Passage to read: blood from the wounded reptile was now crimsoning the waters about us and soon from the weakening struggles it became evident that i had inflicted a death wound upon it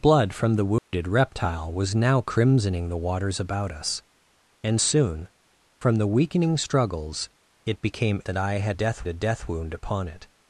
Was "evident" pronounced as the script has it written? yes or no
no